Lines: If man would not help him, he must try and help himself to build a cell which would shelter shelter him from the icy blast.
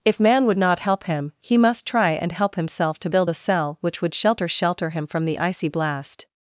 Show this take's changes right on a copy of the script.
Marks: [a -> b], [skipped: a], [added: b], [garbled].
If man would not help him, he must try and help himself to build a cell which would shelter shelter him from the icy blast.